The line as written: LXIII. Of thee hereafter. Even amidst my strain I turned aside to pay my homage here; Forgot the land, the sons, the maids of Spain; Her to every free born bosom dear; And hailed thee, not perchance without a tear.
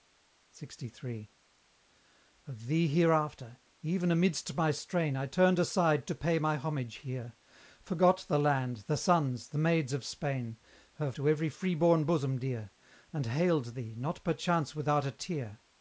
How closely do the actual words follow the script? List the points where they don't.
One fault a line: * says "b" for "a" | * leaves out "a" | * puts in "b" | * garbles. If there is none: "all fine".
all fine